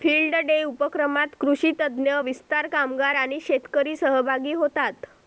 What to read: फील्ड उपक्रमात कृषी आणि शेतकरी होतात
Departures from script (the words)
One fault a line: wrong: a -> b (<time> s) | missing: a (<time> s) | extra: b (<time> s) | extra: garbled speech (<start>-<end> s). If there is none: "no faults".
extra: डे (0.3 s)
extra: तज्ञ विस्तार कामगार (1.7 s)
extra: सहभागी (4.0 s)